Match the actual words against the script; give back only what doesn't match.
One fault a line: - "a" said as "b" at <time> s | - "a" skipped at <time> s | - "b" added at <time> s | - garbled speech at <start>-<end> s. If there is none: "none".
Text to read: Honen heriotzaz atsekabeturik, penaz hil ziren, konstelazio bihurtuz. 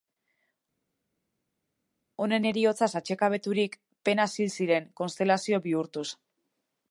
none